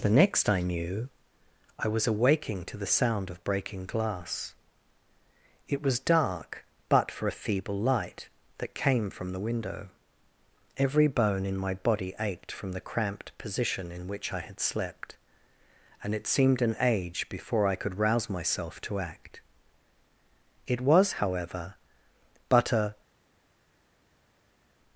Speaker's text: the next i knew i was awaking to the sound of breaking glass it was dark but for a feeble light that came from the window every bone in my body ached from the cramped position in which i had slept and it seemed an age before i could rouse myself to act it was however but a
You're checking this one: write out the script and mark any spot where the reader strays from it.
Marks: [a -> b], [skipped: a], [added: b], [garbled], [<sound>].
the next i knew i was awaking to the sound of breaking glass it was dark but for a feeble light that came from the window every bone in my body ached from the cramped position in which i had slept and it seemed an age before i could rouse myself to act it was however but a